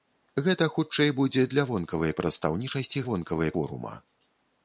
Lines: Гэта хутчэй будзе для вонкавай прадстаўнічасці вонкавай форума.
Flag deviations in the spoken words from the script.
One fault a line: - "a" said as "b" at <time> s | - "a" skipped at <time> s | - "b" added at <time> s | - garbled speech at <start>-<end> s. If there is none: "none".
none